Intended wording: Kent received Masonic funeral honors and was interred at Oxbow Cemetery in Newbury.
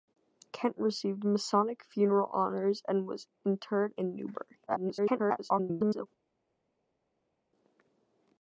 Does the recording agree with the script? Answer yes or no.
no